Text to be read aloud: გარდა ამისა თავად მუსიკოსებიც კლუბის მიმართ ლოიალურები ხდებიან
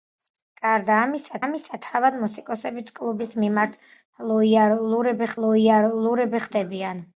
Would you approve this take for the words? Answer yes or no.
no